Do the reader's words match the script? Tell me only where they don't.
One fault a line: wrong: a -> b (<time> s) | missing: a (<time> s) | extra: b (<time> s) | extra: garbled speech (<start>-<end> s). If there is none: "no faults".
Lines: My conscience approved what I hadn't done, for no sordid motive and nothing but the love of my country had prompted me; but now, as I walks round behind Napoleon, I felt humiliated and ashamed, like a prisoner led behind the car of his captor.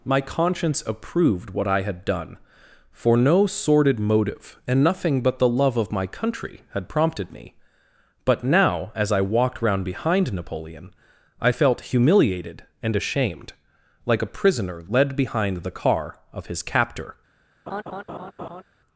wrong: hadn't -> had (1.8 s)
wrong: walks -> walked (9.2 s)